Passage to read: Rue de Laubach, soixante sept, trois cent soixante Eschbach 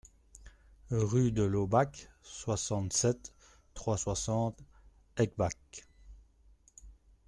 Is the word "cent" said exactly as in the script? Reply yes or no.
no